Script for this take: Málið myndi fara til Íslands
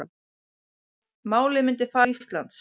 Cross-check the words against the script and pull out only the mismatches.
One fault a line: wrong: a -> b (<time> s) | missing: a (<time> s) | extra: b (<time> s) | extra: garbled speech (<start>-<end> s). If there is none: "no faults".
missing: til (2.2 s)